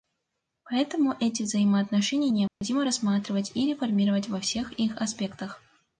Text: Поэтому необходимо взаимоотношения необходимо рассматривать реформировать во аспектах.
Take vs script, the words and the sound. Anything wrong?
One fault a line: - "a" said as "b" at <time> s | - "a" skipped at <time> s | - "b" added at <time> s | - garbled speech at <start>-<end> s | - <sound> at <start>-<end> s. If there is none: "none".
- "необходимо" said as "эти" at 1.2 s
- dropout at 2.5-2.6 s
- "и" added at 3.5 s
- "всех их" added at 4.4 s